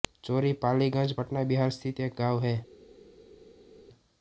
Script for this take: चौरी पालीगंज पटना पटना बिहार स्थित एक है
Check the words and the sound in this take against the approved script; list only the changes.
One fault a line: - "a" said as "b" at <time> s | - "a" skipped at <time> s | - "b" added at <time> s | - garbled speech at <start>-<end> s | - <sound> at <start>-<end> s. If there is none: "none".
- "पटना" skipped at 1.4 s
- "गाँव" added at 2.2 s